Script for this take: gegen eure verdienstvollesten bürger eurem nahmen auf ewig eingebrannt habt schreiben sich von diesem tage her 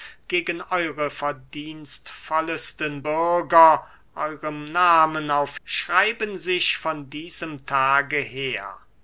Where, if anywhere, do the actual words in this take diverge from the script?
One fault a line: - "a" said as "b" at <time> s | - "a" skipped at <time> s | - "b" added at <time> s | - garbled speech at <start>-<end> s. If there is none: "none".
- "ewig eingebrannt habt" skipped at 5.6 s